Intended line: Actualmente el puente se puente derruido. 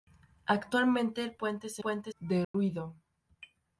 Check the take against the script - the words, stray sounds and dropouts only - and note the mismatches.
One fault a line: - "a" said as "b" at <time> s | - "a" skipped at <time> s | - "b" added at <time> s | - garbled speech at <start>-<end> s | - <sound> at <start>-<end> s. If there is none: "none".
- dropout at 2.4-2.5 s